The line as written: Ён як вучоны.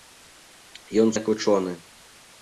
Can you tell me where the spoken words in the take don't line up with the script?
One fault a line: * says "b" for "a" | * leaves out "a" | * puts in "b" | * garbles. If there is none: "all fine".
all fine